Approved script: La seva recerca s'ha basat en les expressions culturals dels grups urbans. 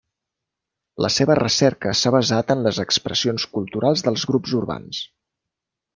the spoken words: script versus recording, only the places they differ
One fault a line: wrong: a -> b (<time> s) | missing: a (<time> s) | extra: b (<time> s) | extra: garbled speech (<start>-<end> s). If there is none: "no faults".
no faults